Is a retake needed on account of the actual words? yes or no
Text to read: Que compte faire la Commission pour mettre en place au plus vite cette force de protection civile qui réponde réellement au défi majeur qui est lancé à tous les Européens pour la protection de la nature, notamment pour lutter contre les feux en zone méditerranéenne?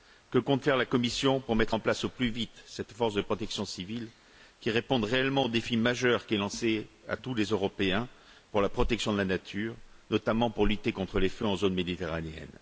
no